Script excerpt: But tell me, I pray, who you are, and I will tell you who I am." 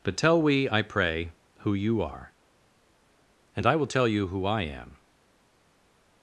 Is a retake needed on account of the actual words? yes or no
yes